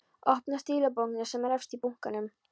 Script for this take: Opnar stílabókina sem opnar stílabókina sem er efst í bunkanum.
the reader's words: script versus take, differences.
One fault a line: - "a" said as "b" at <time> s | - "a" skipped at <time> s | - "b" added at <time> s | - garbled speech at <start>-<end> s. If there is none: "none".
- "opnar stílabókina sem" skipped at 1.5 s